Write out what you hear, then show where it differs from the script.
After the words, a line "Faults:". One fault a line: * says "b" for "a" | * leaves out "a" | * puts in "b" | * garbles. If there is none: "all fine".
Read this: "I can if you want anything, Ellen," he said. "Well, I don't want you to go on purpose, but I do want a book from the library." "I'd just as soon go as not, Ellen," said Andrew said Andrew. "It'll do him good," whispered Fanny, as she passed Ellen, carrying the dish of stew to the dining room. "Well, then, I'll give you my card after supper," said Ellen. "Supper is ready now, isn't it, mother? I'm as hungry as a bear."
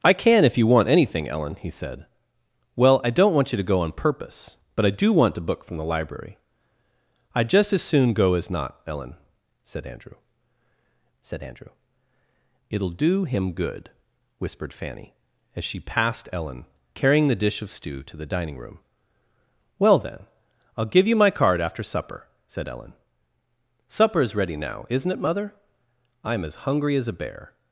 "I can if you want anything, Ellen," he said. "Well, I don't want you to go on purpose, but I do want a book from the library." "I'd just as soon go as not, Ellen," said Andrew said Andrew. "It'll do him good," whispered Fanny, as she passed Ellen, carrying the dish of stew to the dining room. "Well, then, I'll give you my card after supper," said Ellen. "Supper is ready now, isn't it, mother? I'm as hungry as a bear."
Faults:
all fine